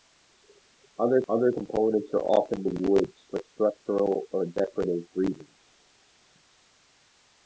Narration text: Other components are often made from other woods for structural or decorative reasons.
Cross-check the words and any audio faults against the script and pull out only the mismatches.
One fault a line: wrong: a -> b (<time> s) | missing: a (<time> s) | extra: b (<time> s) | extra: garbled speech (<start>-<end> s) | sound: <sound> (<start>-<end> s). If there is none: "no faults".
extra: other (1.3 s)
missing: made from other (2.7 s)